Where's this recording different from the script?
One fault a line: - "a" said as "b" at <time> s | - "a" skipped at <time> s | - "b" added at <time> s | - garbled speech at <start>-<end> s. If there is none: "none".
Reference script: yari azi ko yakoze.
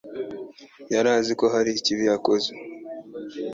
- "hari ikibi" added at 1.5 s